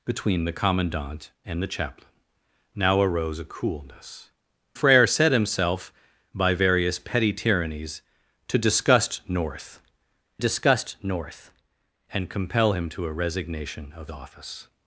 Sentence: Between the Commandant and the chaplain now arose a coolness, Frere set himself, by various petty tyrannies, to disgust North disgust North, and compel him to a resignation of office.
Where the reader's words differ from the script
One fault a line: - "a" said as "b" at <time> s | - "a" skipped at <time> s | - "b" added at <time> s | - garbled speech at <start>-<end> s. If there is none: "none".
none